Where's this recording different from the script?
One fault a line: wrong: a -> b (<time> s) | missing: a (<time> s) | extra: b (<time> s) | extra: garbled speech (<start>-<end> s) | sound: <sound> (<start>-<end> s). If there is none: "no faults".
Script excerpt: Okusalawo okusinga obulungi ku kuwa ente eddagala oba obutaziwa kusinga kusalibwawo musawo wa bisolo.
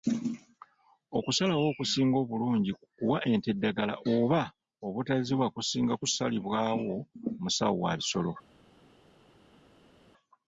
no faults